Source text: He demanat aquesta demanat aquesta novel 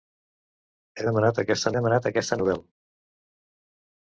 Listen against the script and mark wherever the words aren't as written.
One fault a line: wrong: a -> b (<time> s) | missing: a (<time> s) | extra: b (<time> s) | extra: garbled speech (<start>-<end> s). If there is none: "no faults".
no faults